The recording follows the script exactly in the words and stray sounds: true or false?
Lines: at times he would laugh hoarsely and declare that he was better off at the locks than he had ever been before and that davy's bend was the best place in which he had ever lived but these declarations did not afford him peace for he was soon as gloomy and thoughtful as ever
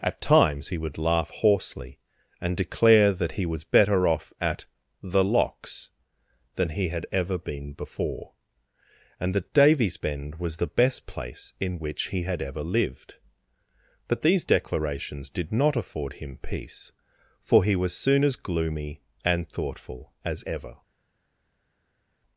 true